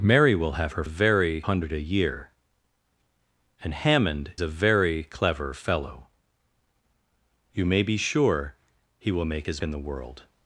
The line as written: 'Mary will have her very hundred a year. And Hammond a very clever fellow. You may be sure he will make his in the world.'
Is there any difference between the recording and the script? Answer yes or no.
no